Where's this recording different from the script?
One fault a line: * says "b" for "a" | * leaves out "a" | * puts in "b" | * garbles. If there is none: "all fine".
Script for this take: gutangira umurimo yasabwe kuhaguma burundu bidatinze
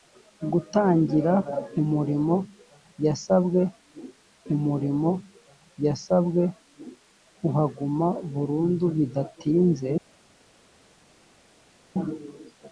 * puts in "umurimo yasabwe"